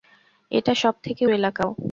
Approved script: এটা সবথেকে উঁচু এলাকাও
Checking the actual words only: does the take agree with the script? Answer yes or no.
no